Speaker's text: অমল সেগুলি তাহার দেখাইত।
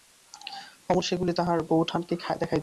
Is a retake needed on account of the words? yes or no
yes